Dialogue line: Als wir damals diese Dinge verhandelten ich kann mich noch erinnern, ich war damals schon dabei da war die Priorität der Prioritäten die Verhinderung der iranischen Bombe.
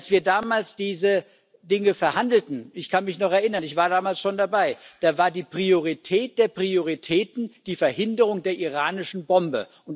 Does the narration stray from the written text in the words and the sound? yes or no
no